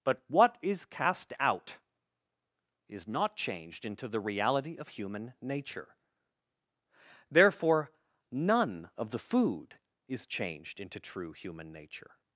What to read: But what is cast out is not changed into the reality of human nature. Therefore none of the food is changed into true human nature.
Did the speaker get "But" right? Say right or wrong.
right